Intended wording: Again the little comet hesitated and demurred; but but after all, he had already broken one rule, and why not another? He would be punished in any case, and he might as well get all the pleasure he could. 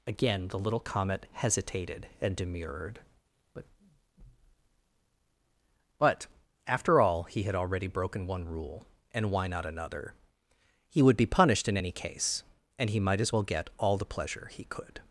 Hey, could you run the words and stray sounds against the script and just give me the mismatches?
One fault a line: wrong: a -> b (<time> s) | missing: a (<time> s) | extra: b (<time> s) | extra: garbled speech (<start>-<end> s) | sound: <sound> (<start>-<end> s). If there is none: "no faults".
no faults